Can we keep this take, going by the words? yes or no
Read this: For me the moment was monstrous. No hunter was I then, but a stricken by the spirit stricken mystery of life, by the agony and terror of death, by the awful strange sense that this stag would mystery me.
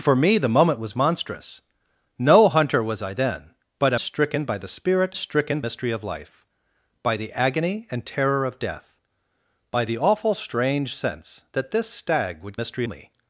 yes